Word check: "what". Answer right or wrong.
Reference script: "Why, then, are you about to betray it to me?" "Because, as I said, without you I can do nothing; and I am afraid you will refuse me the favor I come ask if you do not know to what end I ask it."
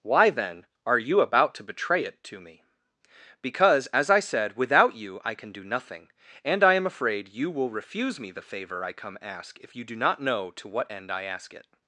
right